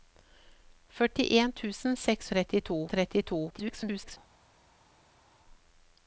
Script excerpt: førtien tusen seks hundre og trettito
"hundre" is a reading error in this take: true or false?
true